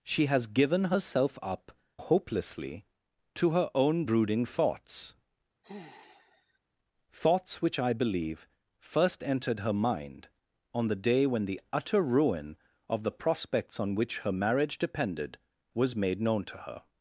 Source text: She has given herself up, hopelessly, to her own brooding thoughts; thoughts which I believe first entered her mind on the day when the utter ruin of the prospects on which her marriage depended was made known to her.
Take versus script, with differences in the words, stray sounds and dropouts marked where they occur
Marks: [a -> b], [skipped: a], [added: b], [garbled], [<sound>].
She has given herself up, hopelessly, to her own brooding thoughts; [sigh] thoughts which I believe first entered her mind on the day when the utter ruin of the prospects on which her marriage depended was made known to her.